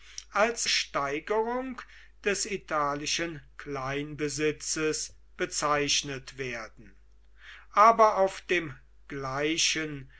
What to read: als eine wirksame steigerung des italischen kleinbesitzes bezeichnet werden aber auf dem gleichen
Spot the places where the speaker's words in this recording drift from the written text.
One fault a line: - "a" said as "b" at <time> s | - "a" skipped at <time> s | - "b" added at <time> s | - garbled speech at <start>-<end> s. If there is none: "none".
- "eine wirksame" skipped at 0.7 s